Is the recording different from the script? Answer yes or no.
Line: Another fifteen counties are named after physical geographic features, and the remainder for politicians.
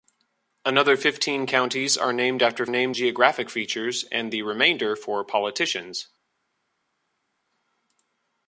yes